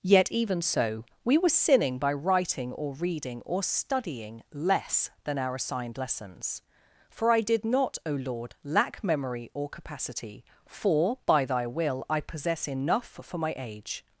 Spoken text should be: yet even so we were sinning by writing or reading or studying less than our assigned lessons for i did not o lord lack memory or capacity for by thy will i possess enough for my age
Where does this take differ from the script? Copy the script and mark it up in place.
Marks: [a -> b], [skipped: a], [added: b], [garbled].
yet even so we were sinning by writing or reading or studying less than our assigned lessons for i did not o lord lack memory or capacity for by thy will i possess enough for my age